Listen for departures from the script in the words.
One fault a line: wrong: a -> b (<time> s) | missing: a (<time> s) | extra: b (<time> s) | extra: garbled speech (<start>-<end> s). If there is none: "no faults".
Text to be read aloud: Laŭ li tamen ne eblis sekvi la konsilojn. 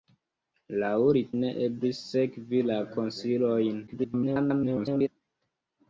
missing: tamen (1.2 s)
extra: garbled speech (3.9-5.1 s)